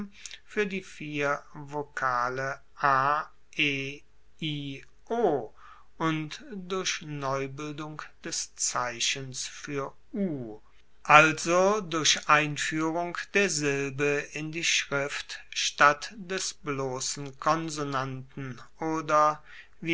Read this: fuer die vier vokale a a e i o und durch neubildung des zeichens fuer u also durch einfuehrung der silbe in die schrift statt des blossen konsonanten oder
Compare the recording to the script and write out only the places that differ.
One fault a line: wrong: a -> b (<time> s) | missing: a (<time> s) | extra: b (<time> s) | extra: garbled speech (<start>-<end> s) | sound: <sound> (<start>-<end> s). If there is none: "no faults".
missing: a (3.2 s)